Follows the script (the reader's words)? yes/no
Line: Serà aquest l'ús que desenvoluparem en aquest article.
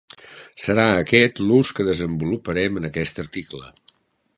yes